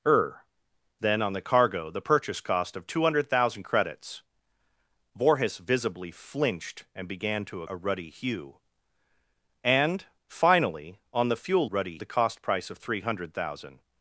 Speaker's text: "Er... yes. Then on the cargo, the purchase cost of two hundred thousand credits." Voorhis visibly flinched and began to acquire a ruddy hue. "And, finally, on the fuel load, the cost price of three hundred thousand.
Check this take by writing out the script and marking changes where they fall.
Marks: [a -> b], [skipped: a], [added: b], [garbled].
"Er... [skipped: yes.] Then on the cargo, the purchase cost of two hundred thousand credits." Voorhis visibly flinched and began to [skipped: acquire] a ruddy hue. "And, finally, on the fuel [load, -> ruddy] the cost price of three hundred thousand.